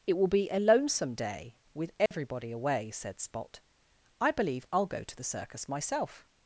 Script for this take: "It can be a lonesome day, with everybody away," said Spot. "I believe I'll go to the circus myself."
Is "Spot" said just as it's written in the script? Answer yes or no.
yes